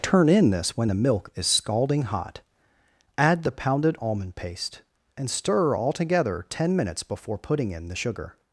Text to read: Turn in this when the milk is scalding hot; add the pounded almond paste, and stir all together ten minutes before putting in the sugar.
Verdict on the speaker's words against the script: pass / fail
pass